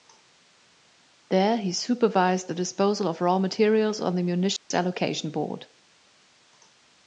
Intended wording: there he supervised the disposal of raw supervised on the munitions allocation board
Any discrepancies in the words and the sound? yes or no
yes